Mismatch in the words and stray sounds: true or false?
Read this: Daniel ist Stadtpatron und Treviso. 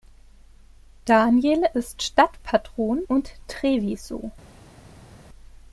false